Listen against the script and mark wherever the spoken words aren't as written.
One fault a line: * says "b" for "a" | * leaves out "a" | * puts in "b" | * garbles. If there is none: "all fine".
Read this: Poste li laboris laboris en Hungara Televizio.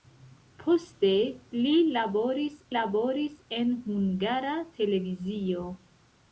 all fine